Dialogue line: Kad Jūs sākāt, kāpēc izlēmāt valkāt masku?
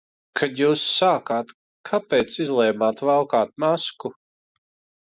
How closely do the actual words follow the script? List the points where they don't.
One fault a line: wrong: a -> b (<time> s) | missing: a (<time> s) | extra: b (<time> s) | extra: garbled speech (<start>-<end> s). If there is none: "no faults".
no faults